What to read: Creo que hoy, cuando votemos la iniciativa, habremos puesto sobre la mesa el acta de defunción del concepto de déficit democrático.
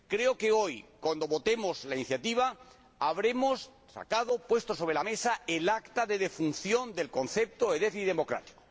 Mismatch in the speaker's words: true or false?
false